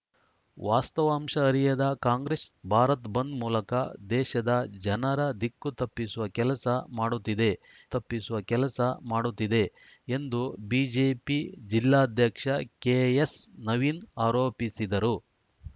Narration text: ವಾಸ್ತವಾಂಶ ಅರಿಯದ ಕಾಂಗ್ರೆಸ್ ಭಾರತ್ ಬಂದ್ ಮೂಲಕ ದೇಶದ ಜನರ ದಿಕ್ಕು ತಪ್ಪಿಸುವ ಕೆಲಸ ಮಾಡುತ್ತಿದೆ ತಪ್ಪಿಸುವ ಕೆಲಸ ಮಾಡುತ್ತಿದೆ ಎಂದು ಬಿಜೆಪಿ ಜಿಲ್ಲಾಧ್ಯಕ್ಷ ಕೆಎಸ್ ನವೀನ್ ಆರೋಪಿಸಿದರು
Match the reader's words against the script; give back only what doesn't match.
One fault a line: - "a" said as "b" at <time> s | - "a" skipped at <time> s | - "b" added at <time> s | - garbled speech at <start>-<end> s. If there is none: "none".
none